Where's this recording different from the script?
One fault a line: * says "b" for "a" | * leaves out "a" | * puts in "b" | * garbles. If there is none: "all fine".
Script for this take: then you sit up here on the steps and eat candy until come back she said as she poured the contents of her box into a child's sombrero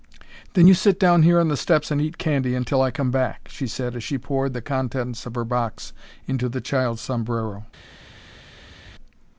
* says "down" for "up"
* puts in "i"
* says "the" for "a"